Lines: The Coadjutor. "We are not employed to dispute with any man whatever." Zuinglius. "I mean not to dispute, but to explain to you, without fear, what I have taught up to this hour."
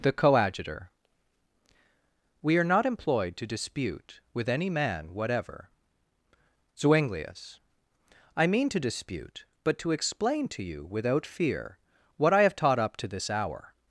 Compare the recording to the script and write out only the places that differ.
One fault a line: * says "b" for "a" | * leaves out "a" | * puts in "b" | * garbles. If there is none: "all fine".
* leaves out "not"